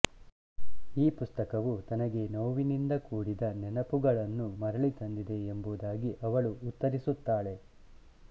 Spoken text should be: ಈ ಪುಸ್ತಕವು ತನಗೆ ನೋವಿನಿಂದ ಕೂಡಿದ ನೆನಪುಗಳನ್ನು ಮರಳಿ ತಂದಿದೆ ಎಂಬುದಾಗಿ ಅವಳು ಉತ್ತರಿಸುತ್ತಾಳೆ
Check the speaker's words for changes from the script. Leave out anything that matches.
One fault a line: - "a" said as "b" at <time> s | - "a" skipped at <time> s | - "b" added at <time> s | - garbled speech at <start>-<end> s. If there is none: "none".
none